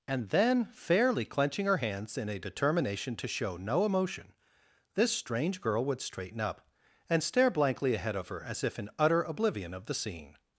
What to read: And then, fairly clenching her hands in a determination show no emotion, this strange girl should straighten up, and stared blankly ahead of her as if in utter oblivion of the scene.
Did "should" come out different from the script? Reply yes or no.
yes